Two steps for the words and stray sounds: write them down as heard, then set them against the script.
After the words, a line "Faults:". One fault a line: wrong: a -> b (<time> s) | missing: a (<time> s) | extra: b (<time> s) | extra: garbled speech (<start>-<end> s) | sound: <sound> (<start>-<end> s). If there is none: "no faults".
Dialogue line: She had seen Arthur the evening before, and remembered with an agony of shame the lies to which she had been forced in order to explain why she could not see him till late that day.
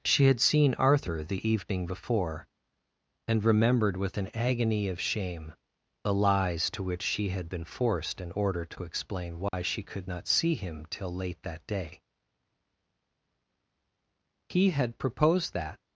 She had seen Arthur the evening before, and remembered with an agony of shame the lies to which she had been forced in order to explain why she could not see him till late that day. He had proposed that
Faults:
sound: dropout (9.5-9.5 s)
extra: He had proposed that (14.5 s)